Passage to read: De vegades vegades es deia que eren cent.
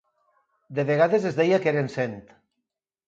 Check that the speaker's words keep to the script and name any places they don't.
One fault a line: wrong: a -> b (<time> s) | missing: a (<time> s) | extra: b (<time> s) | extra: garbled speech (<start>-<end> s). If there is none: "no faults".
missing: vegades (1.3 s)